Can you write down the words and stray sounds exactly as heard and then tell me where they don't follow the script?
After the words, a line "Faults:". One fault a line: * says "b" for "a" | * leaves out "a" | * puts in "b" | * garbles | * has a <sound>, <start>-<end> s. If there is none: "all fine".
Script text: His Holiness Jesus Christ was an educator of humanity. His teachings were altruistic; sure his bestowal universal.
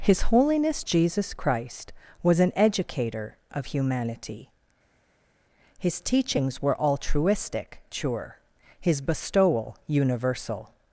His Holiness Jesus Christ was an educator of humanity. His teachings were altruistic; sure his bestowal universal.
Faults:
all fine